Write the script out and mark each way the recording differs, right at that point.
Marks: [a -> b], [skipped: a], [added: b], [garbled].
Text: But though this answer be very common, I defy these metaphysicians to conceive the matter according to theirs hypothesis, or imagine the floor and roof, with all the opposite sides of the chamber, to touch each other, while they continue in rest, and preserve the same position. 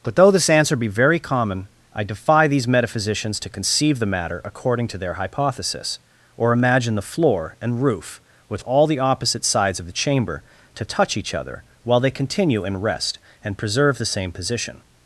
But though this answer be very common, I defy these metaphysicians to conceive the matter according to [theirs -> their] hypothesis, or imagine the floor and roof, with all the opposite sides of the chamber, to touch each other, while they continue in rest, and preserve the same position.